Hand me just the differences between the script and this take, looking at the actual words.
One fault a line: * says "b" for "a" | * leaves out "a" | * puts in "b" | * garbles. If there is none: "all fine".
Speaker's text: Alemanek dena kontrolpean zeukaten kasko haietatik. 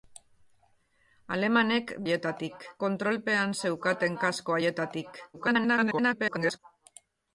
* says "haietatik" for "dena"
* garbles